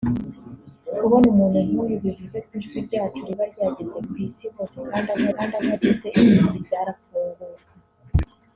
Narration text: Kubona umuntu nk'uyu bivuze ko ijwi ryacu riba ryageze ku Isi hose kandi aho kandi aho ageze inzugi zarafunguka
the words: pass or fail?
pass